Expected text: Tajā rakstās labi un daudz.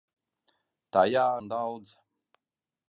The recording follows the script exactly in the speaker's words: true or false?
false